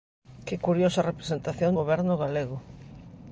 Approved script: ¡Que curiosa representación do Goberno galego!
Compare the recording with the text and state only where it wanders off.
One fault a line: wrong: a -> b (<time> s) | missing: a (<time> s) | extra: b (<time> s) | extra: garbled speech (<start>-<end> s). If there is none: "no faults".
missing: do (1.7 s)